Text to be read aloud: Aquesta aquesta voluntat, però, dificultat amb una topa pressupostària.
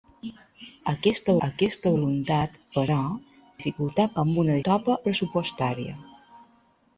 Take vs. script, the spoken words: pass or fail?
pass